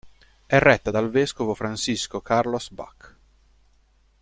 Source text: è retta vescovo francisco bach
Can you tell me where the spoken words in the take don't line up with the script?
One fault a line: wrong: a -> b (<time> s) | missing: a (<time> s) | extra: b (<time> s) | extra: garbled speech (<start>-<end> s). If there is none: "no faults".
extra: dal (0.9 s)
extra: carlos (2.2 s)